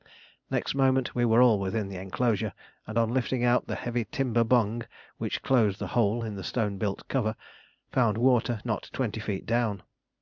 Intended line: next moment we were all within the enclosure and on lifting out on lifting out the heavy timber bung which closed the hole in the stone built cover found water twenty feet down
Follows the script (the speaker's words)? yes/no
no